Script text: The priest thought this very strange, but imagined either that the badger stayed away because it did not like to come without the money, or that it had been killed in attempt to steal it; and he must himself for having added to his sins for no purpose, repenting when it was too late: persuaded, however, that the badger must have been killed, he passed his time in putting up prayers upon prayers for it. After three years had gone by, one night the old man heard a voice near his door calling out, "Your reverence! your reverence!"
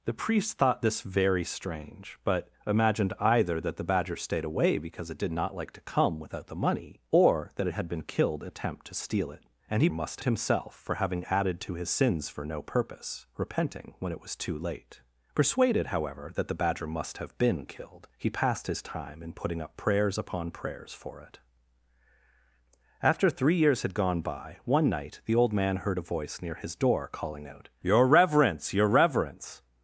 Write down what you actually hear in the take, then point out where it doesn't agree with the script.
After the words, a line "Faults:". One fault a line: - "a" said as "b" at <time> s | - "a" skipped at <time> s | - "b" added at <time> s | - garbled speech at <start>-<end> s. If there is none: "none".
The priest thought this very strange, but imagined either that the badger stayed away because it did not like to come without the money, or that it had been killed in attempt to steal it; and he must himself for having added to his sins for no purpose, repenting when it was too late: persuaded, however, that the badger must have been killed, he passed his time in putting up prayers upon prayers for it. After three years had gone by, one night the old man heard a voice near his door calling out, "Your reverence! your reverence!"
Faults:
none